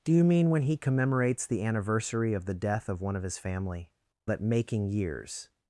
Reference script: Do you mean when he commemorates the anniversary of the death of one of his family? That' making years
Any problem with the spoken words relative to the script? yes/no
no